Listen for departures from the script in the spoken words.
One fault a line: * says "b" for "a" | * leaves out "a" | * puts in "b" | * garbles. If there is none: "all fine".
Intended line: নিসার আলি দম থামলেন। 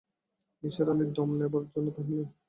* puts in "নেবার জন্যে"